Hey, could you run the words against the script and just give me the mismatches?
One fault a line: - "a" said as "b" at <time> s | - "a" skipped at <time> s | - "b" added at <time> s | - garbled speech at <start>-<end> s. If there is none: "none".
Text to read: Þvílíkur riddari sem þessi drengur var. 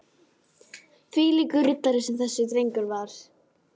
none